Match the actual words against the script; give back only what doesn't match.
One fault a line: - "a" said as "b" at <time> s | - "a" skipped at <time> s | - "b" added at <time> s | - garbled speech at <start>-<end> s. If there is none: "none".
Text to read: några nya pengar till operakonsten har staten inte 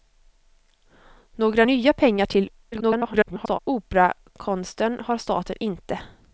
- garbled speech at 2.7-3.6 s